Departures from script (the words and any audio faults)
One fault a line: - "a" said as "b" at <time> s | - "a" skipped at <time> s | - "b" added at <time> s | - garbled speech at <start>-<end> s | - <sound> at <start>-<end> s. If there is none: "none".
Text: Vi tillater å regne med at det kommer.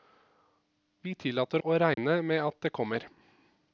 - dropout at 1.9-2.0 s